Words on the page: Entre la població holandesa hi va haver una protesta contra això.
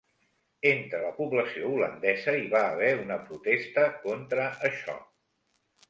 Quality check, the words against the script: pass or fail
pass